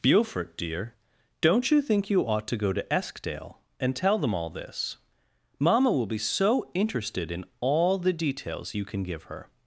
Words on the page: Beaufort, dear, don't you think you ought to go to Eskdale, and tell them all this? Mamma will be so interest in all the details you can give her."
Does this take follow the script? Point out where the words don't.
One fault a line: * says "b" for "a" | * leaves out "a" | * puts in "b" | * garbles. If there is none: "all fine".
* says "interested" for "interest"